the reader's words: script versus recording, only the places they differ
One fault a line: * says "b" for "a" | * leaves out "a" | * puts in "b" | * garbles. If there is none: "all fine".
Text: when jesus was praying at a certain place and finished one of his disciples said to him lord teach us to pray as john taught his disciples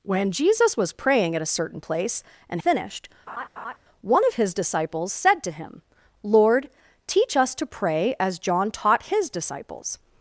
all fine